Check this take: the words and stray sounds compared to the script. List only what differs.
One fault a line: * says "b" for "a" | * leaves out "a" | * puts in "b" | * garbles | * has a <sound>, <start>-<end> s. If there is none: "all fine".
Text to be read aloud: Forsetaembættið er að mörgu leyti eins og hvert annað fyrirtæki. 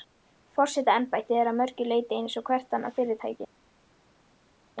all fine